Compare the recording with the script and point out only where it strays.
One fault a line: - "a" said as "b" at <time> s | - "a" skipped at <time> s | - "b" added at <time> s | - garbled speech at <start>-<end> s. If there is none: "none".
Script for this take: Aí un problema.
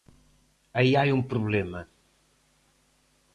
- "hai" added at 1.0 s